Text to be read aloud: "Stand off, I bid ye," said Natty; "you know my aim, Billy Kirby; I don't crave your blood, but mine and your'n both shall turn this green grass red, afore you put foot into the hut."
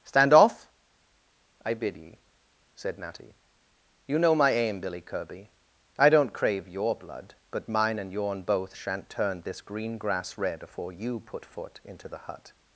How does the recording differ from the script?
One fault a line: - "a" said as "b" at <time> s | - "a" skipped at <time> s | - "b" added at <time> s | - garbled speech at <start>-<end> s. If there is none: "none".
- "shall" said as "shan't" at 8.8 s